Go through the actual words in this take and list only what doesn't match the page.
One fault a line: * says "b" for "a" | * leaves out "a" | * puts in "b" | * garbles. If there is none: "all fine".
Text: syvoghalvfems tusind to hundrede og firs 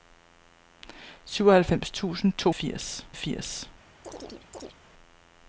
* says "firs" for "hundrede"